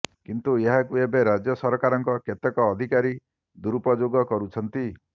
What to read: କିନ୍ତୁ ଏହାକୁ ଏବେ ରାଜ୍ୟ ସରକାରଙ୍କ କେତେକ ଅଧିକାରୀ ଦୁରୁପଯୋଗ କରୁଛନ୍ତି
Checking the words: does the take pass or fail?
pass